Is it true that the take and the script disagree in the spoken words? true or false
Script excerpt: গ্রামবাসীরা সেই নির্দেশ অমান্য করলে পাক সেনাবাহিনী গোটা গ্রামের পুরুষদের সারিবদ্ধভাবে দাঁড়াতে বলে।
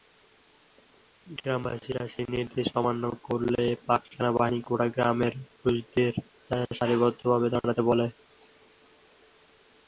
false